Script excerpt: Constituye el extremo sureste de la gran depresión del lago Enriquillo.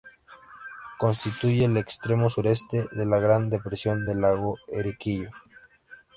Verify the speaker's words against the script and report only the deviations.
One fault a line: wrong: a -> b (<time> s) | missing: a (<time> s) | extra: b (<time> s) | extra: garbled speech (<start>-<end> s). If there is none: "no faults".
no faults